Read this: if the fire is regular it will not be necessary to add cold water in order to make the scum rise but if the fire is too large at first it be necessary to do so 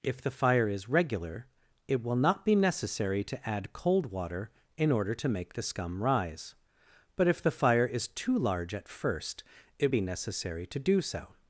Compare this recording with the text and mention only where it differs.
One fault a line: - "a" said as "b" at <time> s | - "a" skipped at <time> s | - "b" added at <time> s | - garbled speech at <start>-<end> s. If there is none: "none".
none